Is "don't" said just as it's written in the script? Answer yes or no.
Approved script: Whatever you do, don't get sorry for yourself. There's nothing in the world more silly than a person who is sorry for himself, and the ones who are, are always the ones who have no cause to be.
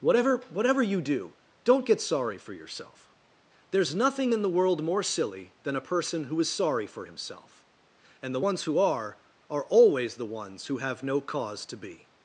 yes